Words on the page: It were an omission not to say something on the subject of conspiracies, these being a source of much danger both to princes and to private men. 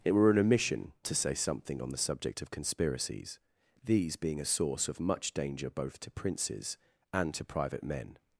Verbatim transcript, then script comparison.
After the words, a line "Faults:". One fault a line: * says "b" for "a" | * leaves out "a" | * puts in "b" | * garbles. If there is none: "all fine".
It were an omission to say something on the subject of conspiracies, these being a source of much danger both to princes and to private men.
Faults:
* leaves out "not"